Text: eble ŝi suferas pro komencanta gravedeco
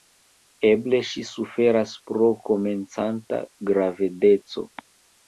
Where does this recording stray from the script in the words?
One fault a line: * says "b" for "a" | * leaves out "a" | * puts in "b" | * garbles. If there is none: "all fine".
all fine